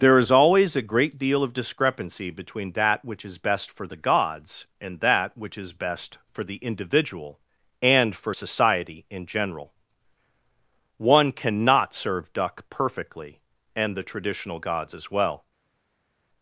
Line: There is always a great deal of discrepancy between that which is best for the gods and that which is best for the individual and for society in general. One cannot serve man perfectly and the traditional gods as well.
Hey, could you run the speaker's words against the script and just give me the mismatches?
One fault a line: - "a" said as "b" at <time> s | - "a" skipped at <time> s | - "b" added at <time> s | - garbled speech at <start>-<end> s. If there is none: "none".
- "man" said as "duck" at 12.3 s